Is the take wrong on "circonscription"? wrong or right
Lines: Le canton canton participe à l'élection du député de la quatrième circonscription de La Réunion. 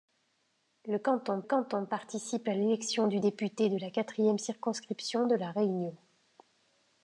right